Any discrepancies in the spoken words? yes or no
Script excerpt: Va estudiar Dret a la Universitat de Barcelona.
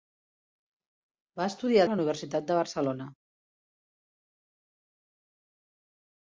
yes